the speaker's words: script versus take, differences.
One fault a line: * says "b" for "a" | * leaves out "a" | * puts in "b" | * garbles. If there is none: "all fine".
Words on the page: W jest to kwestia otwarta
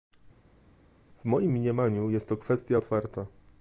* puts in "moim mniemaniu"